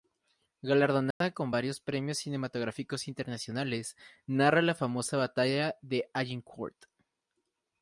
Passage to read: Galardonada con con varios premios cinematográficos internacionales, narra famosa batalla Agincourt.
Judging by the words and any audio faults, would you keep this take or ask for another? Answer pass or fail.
fail